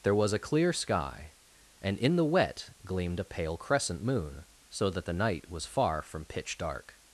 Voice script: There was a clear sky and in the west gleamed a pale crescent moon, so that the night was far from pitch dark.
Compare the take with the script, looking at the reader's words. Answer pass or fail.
fail